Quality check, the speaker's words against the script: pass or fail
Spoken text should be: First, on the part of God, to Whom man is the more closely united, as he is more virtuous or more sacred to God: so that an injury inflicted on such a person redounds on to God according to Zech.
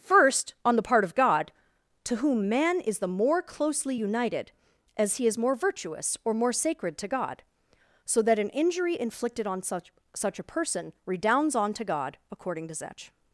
fail